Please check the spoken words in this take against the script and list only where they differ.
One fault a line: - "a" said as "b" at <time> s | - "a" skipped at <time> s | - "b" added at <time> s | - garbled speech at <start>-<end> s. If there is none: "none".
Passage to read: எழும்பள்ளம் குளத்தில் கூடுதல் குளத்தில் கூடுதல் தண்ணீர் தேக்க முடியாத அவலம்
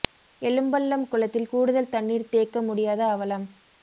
- "குளத்தில் கூடுதல்" skipped at 1.9 s